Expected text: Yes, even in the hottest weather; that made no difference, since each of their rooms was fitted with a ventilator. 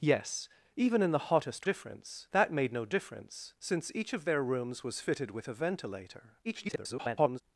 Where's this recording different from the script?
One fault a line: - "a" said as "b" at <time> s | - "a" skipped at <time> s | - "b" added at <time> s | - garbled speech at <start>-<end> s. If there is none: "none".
- "weather" said as "difference" at 1.6 s
- garbled speech at 6.4-7.4 s